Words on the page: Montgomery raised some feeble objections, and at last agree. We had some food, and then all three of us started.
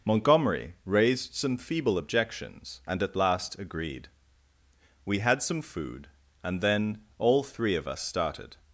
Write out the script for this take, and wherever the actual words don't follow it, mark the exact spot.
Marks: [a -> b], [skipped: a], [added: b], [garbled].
Montgomery raised some feeble objections, and at last [agree. -> agreed] We had some food, and then all three of us started.